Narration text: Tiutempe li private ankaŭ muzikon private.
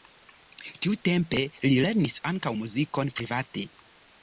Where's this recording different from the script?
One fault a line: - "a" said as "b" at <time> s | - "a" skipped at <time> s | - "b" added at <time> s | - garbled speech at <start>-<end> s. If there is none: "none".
- "private" said as "lernis" at 1.9 s